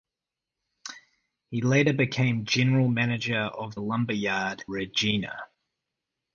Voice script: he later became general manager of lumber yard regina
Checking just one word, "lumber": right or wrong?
right